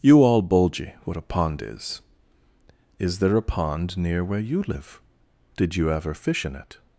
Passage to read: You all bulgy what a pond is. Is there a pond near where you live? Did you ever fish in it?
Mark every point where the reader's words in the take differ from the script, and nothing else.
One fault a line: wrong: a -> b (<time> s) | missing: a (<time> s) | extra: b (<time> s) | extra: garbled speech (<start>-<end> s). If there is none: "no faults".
no faults